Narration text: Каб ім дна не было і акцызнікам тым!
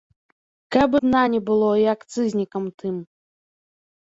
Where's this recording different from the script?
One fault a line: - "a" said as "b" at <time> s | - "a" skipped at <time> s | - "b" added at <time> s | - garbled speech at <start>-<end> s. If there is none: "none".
- "ім" skipped at 1.0 s